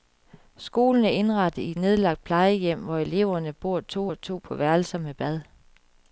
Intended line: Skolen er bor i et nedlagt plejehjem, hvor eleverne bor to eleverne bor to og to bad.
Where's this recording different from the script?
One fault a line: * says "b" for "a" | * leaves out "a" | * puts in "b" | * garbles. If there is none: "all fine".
* says "indrettet" for "bor"
* says "og to på værelser med" for "eleverne bor to og to"